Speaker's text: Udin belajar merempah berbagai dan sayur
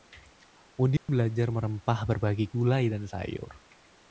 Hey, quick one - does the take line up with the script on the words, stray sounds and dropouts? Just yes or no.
no